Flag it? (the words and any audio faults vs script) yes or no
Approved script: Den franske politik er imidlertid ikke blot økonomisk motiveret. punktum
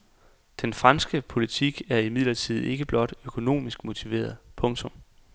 no